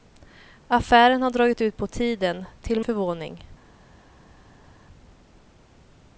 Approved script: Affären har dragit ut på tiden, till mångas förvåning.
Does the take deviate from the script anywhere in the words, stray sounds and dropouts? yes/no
yes